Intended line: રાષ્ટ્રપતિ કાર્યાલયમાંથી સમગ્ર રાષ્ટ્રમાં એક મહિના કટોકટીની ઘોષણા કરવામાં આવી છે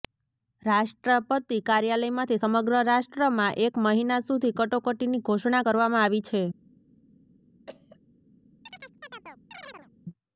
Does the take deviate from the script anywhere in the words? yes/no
yes